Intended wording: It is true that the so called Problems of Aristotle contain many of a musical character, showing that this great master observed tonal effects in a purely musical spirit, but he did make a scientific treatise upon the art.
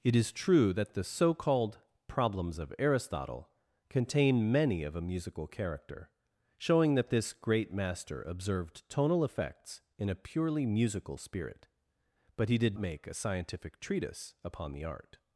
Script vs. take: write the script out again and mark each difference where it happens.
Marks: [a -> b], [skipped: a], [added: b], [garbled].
It is true that the so called Problems of Aristotle contain many of a musical character, showing that this great master observed tonal effects in a purely musical spirit, but he did make a scientific treatise upon the art.